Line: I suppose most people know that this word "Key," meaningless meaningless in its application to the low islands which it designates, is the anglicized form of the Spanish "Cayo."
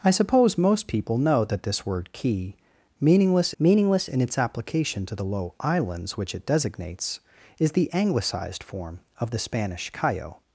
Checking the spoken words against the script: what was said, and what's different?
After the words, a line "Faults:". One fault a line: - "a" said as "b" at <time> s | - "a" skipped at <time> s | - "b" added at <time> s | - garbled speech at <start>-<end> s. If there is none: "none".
I suppose most people know that this word "Key," meaningless meaningless in its application to the low islands which it designates, is the anglicized form of the Spanish "Cayo."
Faults:
none